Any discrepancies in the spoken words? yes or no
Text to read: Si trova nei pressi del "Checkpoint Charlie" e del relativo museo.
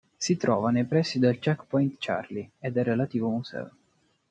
no